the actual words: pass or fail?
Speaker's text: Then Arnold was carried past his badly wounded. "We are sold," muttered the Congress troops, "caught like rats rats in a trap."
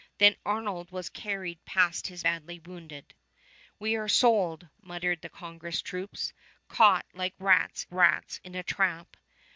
pass